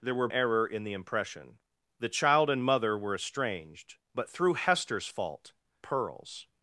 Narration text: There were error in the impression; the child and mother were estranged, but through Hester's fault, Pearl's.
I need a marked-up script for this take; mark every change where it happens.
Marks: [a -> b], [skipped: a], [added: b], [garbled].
There were error in the impression; the child and mother were estranged, but through Hester's fault, Pearl's.